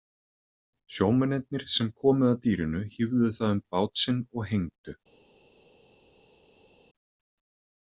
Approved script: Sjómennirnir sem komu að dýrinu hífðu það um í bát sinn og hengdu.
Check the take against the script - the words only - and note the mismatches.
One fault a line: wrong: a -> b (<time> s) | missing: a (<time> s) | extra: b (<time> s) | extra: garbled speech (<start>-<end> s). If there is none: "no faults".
no faults